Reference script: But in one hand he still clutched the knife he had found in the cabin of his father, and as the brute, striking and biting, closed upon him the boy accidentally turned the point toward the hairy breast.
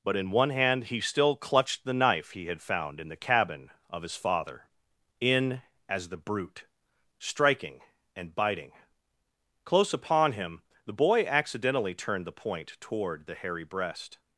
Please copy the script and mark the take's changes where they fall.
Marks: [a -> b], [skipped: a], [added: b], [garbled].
But in one hand he still clutched the knife he had found in the cabin of his father, [and -> in] as the brute, striking and biting, [closed -> close] upon him the boy accidentally turned the point toward the hairy breast.